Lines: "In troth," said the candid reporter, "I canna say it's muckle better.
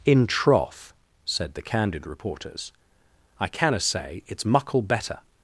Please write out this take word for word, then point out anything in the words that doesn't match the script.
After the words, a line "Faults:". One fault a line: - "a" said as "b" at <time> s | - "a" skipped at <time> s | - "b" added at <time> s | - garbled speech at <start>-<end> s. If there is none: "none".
"In troth," said the candid reporters, "I canna say it's muckle better.
Faults:
- "reporter" said as "reporters" at 2.1 s